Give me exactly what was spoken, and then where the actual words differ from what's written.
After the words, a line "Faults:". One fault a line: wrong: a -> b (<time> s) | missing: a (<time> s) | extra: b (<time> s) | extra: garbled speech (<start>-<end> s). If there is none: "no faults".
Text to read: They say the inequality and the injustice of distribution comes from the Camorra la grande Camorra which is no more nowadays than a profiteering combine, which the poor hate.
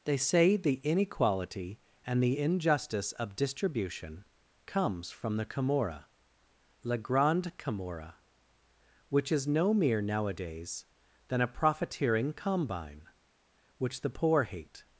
They say the inequality and the injustice of distribution comes from the Camorra la grande Camorra which is no mere nowadays than a profiteering combine, which the poor hate.
Faults:
wrong: more -> mere (9.7 s)